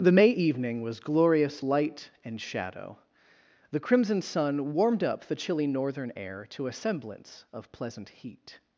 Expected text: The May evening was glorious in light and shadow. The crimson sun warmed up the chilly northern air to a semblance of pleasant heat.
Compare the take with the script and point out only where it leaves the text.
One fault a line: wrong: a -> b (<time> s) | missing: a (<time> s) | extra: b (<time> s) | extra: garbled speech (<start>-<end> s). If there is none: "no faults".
missing: in (1.6 s)